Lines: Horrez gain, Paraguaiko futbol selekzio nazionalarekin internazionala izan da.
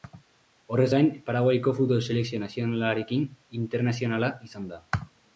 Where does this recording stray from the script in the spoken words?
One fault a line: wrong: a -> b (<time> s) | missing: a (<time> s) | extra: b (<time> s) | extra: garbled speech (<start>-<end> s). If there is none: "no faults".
no faults